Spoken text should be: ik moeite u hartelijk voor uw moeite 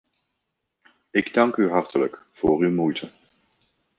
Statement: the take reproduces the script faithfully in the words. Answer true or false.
false